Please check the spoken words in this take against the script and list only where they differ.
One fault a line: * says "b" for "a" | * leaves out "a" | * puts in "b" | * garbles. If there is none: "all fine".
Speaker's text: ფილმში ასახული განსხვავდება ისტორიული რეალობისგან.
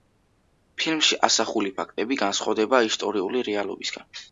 * puts in "ფაქტები"